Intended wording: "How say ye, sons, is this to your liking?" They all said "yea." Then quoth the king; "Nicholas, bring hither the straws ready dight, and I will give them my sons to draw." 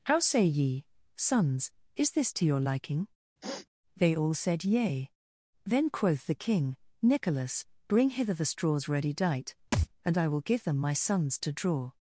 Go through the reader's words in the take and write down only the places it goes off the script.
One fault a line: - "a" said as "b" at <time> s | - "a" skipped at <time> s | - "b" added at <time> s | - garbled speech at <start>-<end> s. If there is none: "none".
none